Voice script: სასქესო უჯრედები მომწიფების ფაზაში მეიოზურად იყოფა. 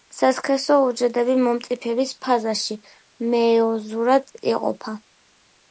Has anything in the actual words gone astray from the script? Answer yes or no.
no